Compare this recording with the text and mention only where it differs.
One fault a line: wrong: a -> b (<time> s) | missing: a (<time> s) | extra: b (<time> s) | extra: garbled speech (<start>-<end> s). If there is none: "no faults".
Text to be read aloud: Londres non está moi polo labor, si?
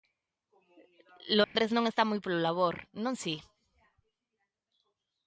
extra: non (3.0 s)